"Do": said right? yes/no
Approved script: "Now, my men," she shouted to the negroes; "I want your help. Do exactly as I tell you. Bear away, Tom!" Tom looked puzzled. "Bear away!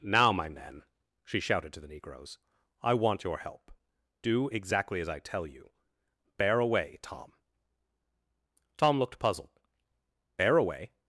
yes